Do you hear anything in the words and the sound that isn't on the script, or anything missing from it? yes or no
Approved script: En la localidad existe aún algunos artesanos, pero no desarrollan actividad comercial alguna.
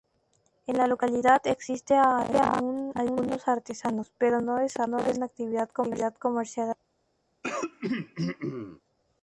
yes